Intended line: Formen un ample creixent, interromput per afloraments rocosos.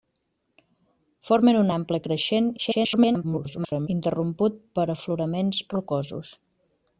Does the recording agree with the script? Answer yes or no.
no